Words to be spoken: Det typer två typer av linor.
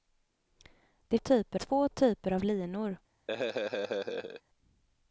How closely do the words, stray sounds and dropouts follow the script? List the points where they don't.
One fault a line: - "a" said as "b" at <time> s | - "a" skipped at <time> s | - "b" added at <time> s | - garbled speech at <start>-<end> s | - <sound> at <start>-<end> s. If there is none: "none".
- laugh at 3.3-4.4 s